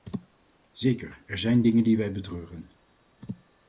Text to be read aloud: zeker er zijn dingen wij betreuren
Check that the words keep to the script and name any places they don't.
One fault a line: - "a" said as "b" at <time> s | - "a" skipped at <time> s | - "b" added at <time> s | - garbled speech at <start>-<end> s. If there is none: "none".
- "die" added at 1.8 s